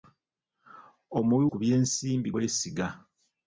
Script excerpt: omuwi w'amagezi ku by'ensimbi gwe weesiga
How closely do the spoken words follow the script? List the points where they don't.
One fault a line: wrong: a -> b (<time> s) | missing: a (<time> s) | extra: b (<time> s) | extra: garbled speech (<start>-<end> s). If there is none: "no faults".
missing: w'amagezi (1.4 s)
missing: gwe (2.3 s)